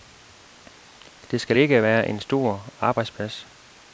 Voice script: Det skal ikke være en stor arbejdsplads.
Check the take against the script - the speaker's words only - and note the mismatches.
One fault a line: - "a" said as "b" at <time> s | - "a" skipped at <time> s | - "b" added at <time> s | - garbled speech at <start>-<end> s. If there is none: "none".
none